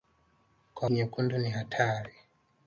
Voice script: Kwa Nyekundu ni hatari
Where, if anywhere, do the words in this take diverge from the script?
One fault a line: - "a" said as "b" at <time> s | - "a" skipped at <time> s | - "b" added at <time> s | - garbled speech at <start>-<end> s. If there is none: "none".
none